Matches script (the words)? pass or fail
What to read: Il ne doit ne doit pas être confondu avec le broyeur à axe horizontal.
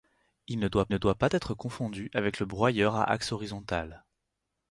pass